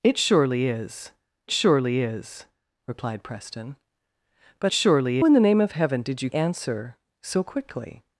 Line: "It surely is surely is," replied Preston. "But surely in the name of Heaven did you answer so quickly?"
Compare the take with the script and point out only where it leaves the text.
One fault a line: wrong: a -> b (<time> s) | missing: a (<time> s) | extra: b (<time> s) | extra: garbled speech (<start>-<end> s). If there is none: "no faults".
no faults